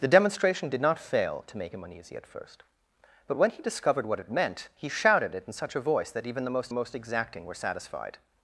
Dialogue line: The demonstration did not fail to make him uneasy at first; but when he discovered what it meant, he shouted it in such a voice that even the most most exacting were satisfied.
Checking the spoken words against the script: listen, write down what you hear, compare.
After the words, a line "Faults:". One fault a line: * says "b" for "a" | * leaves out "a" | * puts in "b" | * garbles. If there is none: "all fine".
The demonstration did not fail to make him uneasy at first; but when he discovered what it meant, he shouted it in such a voice that even the most most exacting were satisfied.
Faults:
all fine